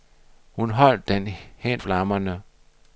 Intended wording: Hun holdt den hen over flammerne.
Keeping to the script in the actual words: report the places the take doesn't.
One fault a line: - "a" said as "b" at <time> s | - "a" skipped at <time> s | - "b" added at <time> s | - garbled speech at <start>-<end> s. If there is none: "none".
- "over" skipped at 1.8 s